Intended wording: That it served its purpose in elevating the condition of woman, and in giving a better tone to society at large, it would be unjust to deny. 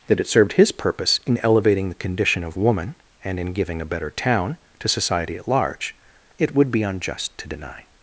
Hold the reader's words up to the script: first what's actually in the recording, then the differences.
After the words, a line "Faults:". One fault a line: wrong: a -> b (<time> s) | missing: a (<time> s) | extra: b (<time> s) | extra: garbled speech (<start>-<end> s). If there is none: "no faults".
That it served his purpose in elevating the condition of woman, and in giving a better town to society at large, it would be unjust to deny.
Faults:
wrong: its -> his (0.5 s)
wrong: tone -> town (4.1 s)